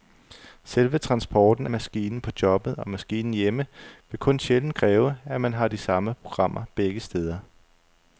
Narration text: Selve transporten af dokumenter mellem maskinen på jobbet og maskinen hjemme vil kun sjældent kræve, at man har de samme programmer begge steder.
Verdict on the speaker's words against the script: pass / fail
fail